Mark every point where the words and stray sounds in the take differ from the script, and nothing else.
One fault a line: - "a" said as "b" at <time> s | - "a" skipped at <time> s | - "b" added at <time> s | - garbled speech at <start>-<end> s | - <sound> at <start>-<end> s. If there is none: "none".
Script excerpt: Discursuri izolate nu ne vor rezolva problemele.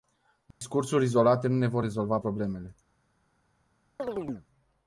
- dropout at 0.5-0.6 s
- chirp at 4.0-4.5 s